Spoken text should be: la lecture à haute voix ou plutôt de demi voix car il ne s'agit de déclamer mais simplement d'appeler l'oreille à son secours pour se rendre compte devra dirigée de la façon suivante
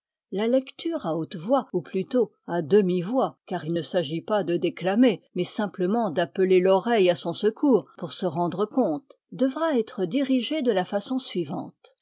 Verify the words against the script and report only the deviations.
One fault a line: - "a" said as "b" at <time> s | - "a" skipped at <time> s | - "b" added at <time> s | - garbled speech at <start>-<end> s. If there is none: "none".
- "de" said as "à" at 2.5 s
- "pas" added at 4.2 s
- "être" added at 9.8 s